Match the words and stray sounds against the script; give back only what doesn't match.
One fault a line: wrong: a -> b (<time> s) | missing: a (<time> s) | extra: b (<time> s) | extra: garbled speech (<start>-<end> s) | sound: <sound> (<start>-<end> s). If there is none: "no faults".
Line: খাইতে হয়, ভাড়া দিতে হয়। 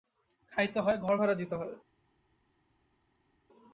extra: ঘর (1.0 s)